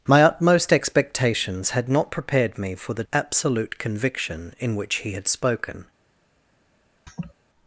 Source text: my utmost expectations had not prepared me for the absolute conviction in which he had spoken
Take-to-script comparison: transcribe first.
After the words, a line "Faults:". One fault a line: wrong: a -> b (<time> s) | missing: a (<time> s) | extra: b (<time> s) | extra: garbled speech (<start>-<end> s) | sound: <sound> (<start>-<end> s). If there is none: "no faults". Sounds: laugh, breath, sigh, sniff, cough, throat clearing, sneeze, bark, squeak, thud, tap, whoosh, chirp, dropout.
my utmost expectations had not prepared me for the absolute conviction in which he had spoken
Faults:
sound: laugh (7.1-7.3 s)